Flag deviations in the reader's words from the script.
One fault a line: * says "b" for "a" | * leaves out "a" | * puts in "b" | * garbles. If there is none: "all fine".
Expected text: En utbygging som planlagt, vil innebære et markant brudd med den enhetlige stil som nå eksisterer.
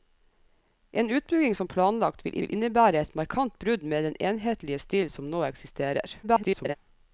* puts in "vil"
* garbles